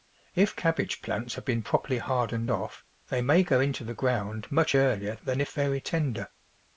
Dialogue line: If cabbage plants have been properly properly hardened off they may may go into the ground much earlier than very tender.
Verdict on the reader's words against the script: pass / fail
fail